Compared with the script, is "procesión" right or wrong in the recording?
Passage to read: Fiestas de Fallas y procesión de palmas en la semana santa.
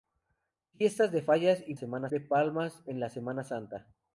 wrong